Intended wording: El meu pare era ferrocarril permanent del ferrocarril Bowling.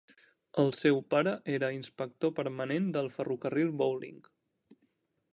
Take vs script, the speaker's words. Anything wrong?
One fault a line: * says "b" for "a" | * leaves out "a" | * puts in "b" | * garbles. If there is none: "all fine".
* says "seu" for "meu"
* says "inspector" for "ferrocarril"